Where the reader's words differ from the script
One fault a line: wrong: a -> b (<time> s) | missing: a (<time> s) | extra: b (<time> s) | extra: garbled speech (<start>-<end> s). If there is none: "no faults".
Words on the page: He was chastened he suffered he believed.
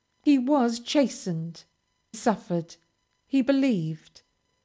missing: he (1.6 s)